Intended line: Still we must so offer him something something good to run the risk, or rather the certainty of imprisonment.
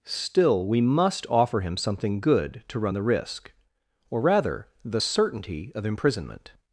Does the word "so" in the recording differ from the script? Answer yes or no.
yes